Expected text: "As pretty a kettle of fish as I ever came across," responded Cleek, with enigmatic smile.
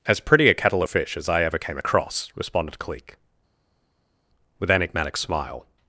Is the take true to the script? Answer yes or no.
yes